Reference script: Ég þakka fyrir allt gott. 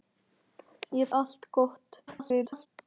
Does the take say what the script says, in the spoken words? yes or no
no